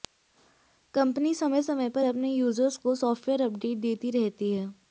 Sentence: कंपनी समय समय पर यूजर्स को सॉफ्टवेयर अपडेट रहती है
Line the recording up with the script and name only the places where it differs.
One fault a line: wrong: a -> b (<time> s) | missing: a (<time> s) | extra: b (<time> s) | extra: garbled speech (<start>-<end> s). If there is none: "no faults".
extra: अपने (2.0 s)
extra: देती (3.8 s)